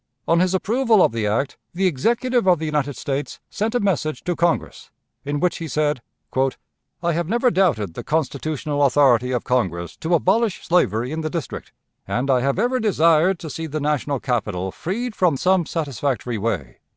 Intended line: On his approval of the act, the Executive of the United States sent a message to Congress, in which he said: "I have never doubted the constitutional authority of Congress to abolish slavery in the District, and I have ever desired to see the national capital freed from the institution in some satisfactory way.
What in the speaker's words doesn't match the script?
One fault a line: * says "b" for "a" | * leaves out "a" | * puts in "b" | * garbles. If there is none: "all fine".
* leaves out "the institution in"